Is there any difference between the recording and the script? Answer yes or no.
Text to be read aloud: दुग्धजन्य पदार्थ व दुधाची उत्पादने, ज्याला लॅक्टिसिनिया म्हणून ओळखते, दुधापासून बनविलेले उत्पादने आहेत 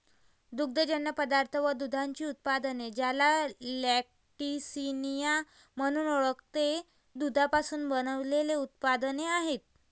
no